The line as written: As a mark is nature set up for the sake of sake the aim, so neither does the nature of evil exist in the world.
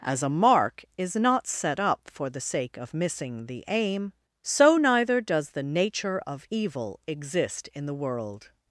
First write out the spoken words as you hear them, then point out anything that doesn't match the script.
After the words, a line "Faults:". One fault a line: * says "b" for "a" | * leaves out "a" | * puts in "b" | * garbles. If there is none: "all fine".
As a mark is not set up for the sake of missing the aim, so neither does the nature of evil exist in the world.
Faults:
* says "not" for "nature"
* says "missing" for "sake"